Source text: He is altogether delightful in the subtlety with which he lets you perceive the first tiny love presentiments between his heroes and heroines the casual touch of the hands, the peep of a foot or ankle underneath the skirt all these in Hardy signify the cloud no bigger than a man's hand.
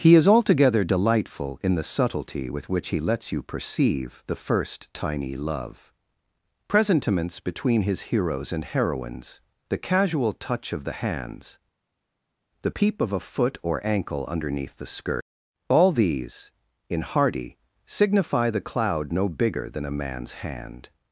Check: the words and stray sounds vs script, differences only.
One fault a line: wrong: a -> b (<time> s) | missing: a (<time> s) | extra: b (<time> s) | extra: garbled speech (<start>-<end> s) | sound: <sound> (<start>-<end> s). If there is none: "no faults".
no faults